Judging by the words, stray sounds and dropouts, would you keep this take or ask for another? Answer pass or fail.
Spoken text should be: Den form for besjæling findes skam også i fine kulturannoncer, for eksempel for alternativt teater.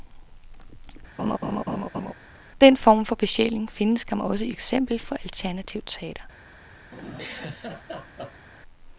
fail